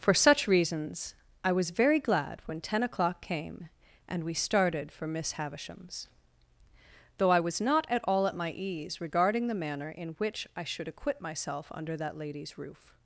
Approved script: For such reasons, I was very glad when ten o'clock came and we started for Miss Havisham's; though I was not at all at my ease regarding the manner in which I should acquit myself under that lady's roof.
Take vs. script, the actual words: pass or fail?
pass